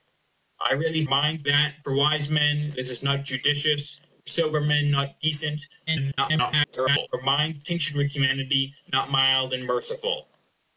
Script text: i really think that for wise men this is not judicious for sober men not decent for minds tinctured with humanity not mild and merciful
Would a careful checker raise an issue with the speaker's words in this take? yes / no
yes